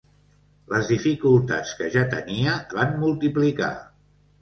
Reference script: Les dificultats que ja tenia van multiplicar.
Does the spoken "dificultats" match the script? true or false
true